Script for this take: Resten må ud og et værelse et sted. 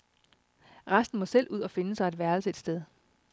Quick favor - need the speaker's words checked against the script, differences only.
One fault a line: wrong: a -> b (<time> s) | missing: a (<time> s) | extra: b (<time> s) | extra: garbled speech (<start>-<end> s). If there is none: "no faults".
extra: selv (1.2 s)
extra: finde sig (1.7 s)